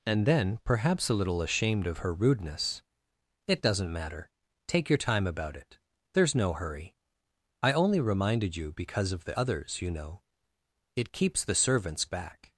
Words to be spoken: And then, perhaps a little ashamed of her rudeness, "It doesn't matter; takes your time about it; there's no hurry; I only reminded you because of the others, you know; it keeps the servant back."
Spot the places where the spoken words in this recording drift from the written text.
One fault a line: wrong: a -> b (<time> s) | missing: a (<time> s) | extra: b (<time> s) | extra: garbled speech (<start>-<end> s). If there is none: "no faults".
wrong: takes -> take (4.7 s)
wrong: servant -> servants (11.5 s)